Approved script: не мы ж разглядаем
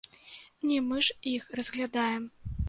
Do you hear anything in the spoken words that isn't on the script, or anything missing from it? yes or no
yes